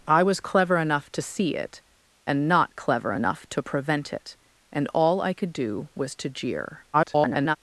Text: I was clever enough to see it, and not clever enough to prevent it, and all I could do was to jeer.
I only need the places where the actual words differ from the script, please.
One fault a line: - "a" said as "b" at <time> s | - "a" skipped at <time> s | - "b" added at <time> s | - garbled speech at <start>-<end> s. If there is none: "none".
- garbled speech at 6.9-7.6 s